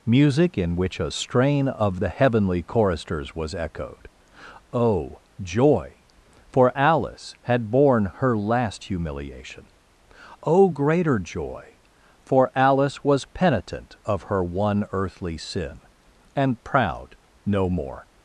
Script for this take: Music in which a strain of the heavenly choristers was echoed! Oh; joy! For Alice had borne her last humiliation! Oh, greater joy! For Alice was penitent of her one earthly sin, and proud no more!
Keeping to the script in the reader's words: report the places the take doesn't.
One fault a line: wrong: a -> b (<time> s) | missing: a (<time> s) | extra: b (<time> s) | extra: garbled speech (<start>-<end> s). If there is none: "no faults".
no faults